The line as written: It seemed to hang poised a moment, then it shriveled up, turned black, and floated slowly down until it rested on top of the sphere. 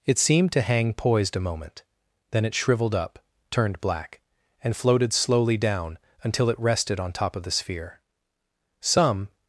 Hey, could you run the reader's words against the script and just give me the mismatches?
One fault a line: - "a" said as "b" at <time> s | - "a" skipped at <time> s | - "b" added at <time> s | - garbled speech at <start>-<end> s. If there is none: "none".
- "Some" added at 8.8 s